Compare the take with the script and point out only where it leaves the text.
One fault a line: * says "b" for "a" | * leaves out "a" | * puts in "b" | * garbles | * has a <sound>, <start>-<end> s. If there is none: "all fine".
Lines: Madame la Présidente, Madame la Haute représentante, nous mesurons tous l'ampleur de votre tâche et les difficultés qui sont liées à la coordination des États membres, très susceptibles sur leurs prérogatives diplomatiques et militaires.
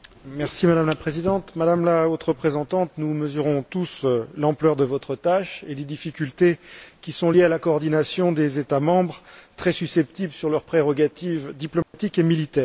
* has a dropout, 11.8-11.9 s